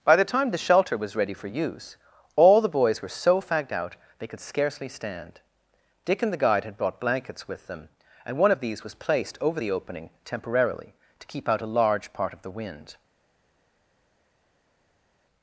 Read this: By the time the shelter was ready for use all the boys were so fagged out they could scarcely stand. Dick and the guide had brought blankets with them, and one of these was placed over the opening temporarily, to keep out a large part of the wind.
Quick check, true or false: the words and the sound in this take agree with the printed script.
true